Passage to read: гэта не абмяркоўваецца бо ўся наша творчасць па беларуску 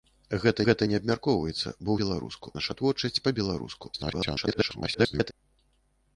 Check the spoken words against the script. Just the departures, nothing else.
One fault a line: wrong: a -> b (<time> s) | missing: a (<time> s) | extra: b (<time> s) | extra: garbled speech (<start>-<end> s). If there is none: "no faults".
extra: гэта (0.7 s)
wrong: ўся -> беларуску (2.0 s)
extra: garbled speech (3.9-5.3 s)